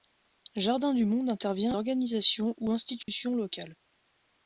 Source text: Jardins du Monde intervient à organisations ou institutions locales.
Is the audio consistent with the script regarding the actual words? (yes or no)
yes